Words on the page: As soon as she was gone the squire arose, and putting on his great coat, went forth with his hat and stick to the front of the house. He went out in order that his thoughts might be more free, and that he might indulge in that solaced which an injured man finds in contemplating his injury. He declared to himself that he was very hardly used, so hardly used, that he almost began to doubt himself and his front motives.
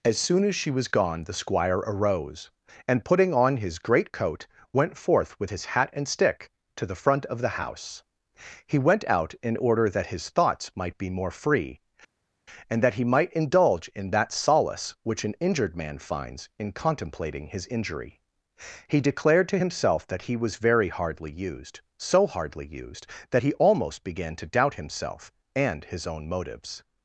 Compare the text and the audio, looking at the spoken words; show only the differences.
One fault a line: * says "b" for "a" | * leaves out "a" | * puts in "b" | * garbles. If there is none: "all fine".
* says "solace" for "solaced"
* says "own" for "front"